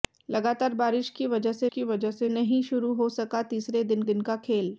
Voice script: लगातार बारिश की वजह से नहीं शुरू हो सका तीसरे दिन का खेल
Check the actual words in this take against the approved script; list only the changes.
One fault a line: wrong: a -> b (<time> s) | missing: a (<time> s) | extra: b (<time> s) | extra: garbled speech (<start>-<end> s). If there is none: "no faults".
extra: की वजह से (1.7 s)
extra: दिन (4.0 s)